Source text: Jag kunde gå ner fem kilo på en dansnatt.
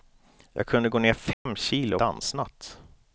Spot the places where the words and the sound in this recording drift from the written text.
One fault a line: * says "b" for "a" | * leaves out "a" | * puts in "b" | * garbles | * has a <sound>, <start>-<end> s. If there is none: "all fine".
* has a dropout, 1.3-1.5 s
* leaves out "på en"